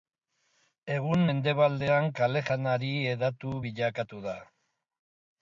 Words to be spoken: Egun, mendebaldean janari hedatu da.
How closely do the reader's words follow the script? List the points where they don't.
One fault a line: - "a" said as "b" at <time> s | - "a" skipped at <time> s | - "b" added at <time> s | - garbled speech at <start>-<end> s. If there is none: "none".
- "kale" added at 2.2 s
- "bilakatu" added at 3.7 s